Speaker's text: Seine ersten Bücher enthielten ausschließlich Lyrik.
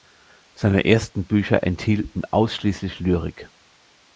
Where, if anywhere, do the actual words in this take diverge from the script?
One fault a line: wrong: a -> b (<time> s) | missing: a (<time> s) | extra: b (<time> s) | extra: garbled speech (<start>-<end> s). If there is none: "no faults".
no faults